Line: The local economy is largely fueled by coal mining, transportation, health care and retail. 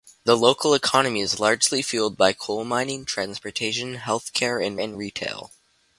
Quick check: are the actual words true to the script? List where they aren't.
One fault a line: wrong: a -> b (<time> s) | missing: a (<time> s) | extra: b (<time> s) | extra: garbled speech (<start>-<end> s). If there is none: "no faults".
extra: and (4.8 s)